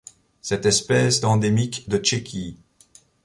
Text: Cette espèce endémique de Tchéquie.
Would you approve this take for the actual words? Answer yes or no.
yes